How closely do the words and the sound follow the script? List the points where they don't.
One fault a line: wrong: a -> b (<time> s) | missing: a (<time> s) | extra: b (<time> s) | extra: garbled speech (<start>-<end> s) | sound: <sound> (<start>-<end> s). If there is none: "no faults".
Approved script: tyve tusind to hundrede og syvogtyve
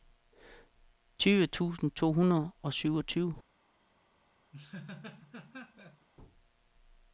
sound: laugh (4.5-6.1 s)